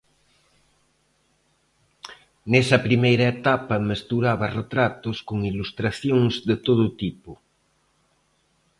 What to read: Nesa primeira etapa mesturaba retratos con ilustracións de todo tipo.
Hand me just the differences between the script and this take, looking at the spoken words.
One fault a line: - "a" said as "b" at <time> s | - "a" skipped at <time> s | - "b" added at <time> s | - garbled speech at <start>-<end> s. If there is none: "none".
none